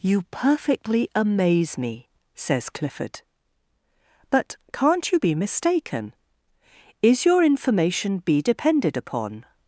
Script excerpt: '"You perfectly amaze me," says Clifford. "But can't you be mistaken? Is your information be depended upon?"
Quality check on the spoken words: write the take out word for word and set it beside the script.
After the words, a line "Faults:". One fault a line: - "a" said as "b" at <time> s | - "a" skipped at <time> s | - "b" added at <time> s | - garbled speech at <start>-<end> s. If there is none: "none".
'"You perfectly amaze me," says Clifford. "But can't you be mistaken? Is your information be depended upon?"
Faults:
none